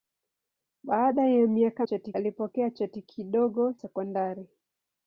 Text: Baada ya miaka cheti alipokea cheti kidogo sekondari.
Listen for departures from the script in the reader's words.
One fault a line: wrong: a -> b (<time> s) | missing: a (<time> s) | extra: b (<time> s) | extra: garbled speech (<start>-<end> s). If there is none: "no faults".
no faults